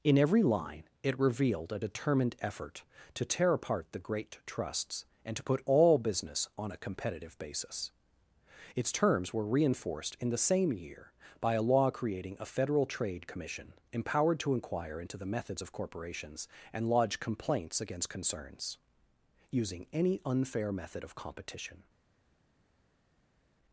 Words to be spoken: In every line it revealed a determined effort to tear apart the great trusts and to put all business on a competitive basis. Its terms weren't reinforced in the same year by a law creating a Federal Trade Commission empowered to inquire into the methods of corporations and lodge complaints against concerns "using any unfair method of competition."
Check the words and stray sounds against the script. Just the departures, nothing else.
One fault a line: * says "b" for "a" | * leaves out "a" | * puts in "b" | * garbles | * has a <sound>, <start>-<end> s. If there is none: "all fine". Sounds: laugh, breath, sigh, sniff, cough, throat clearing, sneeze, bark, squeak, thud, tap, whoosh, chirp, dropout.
* says "were" for "weren't"